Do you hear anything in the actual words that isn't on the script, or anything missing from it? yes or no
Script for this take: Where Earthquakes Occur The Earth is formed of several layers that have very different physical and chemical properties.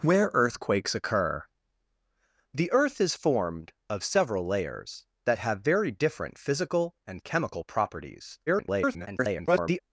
yes